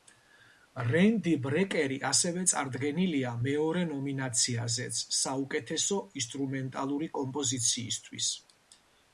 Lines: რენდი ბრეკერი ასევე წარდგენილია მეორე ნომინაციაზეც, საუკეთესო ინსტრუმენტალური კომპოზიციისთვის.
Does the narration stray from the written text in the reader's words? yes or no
no